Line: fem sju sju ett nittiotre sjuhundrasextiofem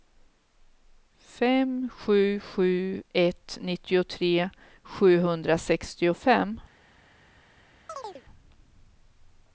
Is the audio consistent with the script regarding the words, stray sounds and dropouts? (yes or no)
no